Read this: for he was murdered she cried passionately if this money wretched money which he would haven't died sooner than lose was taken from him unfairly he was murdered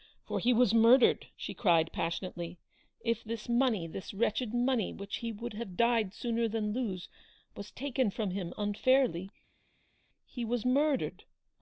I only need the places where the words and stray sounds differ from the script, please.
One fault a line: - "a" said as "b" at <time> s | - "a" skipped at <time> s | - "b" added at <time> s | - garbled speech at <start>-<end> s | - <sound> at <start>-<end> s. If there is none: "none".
- "this" added at 3.9 s
- "haven't" said as "have" at 5.5 s